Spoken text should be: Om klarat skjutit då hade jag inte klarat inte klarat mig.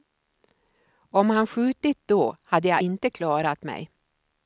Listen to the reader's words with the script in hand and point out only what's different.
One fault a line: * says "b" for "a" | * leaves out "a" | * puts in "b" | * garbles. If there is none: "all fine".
* says "han" for "klarat"
* leaves out "inte klarat"